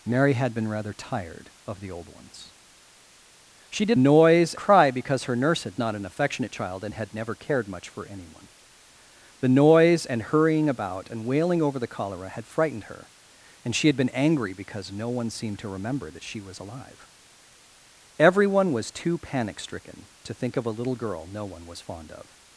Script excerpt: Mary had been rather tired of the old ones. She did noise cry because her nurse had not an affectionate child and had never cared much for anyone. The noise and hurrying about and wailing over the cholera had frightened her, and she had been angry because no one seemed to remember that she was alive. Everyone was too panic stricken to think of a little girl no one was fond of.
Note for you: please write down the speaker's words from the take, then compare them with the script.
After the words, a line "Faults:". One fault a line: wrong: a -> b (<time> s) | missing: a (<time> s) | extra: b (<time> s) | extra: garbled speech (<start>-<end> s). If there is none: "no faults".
Mary had been rather tired of the old ones. She did noise cry because her nurse had not an affectionate child and had never cared much for anyone. The noise and hurrying about and wailing over the cholera had frightened her, and she had been angry because no one seemed to remember that she was alive. Everyone was too panic stricken to think of a little girl no one was fond of.
Faults:
no faults